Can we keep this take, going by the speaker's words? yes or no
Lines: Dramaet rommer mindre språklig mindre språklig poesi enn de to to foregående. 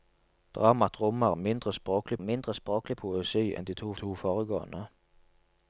yes